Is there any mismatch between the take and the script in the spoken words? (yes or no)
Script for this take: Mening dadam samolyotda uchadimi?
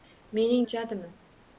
yes